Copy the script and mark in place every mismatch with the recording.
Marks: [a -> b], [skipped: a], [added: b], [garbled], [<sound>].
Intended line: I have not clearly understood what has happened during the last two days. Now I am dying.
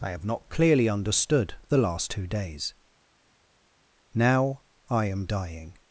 I have not clearly understood [skipped: what has happened during] the last two days. Now I am dying.